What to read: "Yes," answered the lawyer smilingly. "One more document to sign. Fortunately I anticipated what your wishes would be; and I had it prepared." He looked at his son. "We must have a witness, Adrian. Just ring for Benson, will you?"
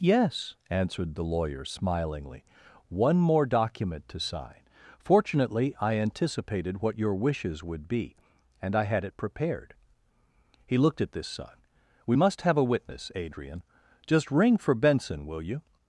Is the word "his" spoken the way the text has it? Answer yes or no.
no